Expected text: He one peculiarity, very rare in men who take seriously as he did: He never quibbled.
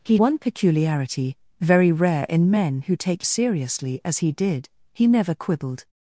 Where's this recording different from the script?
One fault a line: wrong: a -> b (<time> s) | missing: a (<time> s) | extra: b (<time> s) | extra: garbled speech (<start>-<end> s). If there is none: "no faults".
no faults